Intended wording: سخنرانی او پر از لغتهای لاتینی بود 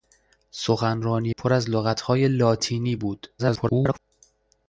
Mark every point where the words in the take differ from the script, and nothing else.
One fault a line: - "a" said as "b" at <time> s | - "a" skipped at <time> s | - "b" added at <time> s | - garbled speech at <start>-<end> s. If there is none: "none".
- "او" skipped at 1.4 s
- garbled speech at 3.4-4.0 s